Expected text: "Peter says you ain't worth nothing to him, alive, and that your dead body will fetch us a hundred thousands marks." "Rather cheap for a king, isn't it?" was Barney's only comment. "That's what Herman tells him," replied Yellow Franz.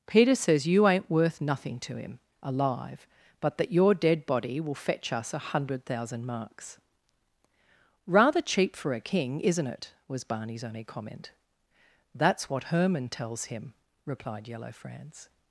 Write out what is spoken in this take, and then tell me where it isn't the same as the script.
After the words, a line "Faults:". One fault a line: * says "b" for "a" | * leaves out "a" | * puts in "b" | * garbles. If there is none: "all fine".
"Peter says you ain't worth nothing to him, alive, but that your dead body will fetch us a hundred thousand marks." "Rather cheap for a king, isn't it?" was Barney's only comment. "That's what Herman tells him," replied Yellow Franz.
Faults:
* says "but" for "and"
* says "thousand" for "thousands"